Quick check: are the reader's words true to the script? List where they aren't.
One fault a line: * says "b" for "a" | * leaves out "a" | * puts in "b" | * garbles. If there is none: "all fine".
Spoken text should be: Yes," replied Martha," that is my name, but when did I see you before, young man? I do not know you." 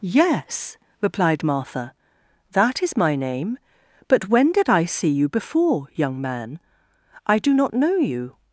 all fine